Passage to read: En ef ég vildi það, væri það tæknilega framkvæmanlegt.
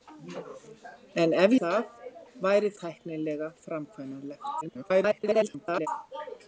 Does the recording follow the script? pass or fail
fail